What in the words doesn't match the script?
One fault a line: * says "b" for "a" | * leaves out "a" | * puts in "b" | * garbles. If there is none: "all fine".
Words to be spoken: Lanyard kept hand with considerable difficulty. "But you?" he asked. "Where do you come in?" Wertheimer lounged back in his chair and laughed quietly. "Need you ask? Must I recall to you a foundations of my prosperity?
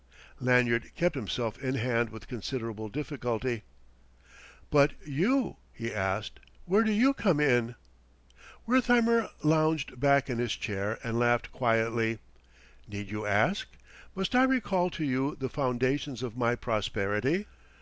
* puts in "himself in"
* says "the" for "a"